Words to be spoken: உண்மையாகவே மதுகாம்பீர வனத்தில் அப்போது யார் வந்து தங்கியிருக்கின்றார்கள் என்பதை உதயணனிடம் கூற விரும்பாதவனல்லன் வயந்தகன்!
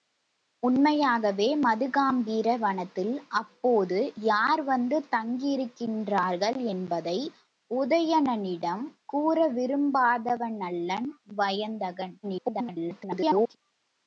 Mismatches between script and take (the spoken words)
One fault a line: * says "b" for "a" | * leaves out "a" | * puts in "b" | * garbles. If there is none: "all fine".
* garbles